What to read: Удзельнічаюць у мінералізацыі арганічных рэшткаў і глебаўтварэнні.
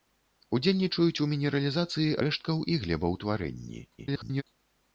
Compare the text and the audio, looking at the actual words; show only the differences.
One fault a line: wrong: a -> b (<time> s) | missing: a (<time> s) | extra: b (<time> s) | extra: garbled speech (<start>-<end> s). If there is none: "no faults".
missing: арганічных (2.2 s)
extra: garbled speech (4.0-4.4 s)